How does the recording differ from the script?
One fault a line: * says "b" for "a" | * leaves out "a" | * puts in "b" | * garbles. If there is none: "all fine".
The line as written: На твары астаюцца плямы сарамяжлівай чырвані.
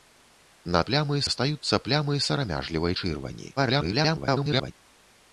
* says "плямы" for "твары"
* garbles